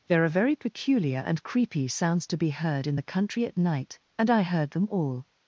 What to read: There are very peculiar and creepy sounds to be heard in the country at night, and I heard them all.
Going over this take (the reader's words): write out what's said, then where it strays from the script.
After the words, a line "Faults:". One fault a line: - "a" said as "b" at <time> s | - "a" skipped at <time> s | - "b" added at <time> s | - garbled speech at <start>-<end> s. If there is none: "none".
There are very peculiar and creepy sounds to be heard in the country at night, and I heard them all.
Faults:
none